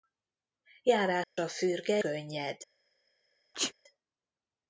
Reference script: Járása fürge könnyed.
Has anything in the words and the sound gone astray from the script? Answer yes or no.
yes